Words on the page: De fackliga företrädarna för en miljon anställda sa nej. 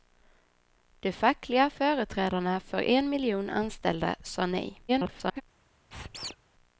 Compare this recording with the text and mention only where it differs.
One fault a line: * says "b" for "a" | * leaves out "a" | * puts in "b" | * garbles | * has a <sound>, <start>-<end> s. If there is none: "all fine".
* garbles
* has a squeak, 5.9-6.4 s